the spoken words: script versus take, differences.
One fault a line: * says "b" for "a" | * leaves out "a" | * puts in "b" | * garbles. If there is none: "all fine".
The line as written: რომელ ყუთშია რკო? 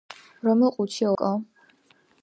all fine